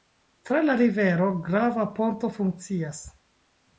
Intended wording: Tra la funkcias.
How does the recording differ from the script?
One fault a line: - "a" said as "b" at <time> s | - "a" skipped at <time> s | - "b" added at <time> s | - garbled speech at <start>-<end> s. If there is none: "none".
- "rivero grava ponto" added at 0.7 s